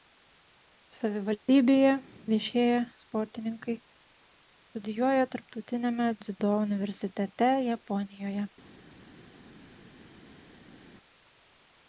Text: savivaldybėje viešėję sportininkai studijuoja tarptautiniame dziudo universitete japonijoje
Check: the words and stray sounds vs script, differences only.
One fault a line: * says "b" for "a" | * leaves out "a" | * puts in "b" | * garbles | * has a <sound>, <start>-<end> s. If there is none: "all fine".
all fine